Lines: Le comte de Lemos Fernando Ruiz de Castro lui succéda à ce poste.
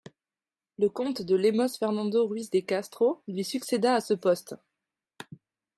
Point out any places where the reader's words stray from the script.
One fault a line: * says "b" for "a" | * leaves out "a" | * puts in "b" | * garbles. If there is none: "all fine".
all fine